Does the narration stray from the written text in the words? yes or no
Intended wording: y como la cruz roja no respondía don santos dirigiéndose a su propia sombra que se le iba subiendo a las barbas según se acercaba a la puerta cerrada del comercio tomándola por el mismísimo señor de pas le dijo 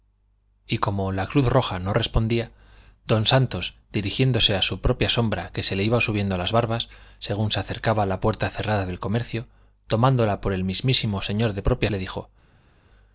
yes